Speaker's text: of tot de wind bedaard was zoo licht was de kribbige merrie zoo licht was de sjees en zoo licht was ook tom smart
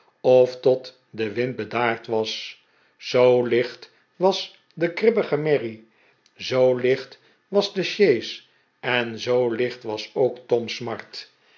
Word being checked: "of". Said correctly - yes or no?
yes